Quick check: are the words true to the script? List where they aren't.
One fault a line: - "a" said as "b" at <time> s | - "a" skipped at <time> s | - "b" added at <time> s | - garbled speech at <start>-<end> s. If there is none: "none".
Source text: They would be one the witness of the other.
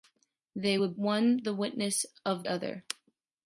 - "be" skipped at 0.9 s
- "the" skipped at 2.4 s